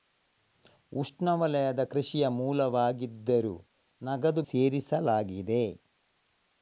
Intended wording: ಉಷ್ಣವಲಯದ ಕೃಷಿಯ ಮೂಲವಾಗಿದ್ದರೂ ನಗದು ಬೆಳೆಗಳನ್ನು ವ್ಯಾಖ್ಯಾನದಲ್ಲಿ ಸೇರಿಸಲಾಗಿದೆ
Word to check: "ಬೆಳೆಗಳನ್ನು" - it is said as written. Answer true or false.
false